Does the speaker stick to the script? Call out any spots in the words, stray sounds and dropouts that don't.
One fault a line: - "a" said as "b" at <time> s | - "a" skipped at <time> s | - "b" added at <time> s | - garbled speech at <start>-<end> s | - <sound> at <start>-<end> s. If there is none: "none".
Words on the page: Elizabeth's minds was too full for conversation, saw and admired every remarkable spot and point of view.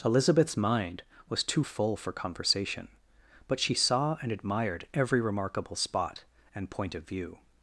- "minds" said as "mind" at 0.6 s
- "but she" added at 3.5 s